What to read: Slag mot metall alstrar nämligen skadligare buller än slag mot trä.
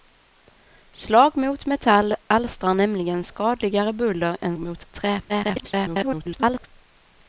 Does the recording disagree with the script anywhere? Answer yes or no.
yes